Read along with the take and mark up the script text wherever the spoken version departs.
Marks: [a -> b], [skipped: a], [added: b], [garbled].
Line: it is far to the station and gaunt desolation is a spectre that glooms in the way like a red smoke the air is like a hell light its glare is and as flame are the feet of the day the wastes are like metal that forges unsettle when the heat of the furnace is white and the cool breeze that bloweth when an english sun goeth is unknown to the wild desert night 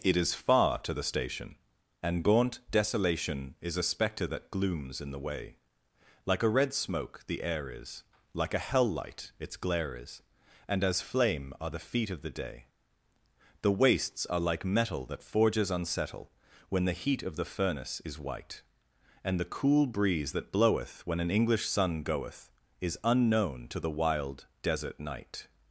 it is far to the station and gaunt desolation is a spectre that glooms in the way like a red smoke the air is like a hell light its glare is and as flame are the feet of the day the wastes are like metal that forges unsettle when the heat of the furnace is white and the cool breeze that bloweth when an english sun goeth is unknown to the wild desert night